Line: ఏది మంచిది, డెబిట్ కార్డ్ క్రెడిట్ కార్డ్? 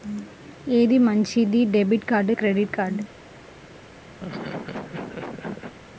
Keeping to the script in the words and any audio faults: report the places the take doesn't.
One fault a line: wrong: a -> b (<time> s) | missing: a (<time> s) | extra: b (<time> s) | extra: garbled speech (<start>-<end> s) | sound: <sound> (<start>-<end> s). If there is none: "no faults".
sound: laugh (4.2-5.7 s)